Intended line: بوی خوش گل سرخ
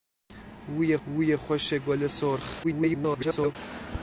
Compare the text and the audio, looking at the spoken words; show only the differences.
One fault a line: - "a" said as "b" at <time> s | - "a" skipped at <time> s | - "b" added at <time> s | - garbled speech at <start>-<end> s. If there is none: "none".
- "بوی" added at 1.1 s
- garbled speech at 2.6-3.6 s